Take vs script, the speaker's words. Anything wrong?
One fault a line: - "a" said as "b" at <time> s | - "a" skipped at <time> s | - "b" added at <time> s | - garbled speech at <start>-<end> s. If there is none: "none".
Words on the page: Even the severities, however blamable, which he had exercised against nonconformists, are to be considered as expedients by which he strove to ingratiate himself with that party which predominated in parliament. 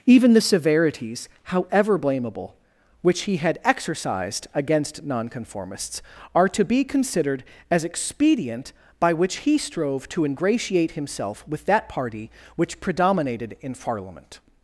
- "expedients" said as "expedient" at 7.8 s